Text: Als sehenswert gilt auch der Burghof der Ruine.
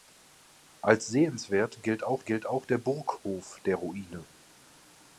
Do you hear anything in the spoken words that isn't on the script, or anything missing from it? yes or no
yes